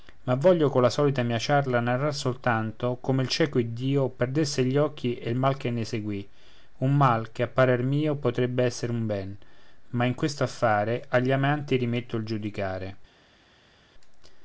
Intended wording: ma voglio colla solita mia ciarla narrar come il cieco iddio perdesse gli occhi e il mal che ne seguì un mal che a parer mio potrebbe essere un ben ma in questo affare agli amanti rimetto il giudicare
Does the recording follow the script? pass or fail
fail